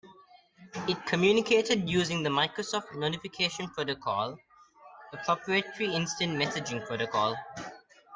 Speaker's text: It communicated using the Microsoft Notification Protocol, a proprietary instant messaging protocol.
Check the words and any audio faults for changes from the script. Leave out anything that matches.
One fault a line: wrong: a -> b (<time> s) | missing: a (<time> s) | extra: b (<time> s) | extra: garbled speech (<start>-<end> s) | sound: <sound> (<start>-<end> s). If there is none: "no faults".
no faults